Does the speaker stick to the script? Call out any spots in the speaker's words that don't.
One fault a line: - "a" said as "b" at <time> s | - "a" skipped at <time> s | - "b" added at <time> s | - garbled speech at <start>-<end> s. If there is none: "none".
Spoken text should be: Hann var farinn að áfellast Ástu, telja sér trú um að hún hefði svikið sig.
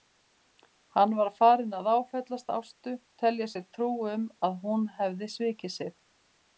none